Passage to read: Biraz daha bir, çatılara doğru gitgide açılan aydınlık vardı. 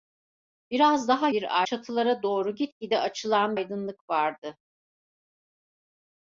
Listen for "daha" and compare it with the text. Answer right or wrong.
right